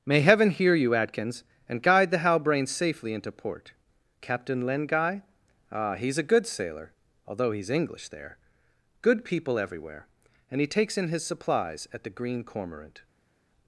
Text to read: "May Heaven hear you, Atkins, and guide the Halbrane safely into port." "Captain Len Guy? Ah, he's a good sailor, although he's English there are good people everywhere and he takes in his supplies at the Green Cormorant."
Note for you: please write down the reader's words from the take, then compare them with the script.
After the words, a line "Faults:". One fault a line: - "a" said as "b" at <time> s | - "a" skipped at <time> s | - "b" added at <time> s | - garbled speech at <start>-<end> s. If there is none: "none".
"May Heaven hear you, Atkins, and guide the Halbrane safely into port." "Captain Len Guy? Ah, he's a good sailor, although he's English there good people everywhere and he takes in his supplies at the Green Cormorant."
Faults:
- "are" skipped at 8.4 s